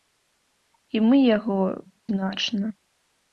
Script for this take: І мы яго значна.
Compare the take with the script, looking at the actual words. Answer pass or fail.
pass